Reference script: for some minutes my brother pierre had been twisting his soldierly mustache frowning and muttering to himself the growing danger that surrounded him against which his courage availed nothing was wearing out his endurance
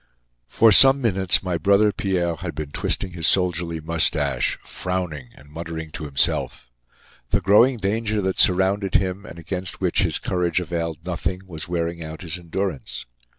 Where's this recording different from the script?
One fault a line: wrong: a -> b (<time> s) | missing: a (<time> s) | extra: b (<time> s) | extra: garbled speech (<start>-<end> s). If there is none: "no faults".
extra: and (9.3 s)